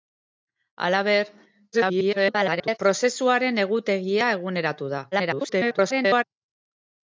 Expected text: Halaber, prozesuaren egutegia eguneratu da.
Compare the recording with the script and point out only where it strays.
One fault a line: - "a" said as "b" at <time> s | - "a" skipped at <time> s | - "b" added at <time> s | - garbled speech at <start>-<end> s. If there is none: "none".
- garbled speech at 1.7-2.8 s
- garbled speech at 5.1-6.2 s